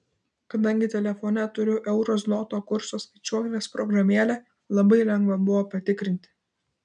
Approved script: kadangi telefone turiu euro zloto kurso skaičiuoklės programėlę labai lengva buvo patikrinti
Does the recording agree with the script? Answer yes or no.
yes